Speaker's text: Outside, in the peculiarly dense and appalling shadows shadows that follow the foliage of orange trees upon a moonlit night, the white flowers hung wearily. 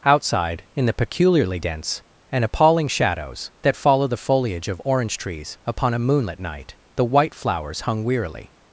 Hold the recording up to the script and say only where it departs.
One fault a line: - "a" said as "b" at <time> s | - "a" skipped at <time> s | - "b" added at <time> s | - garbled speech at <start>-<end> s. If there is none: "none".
- "shadows" skipped at 3.5 s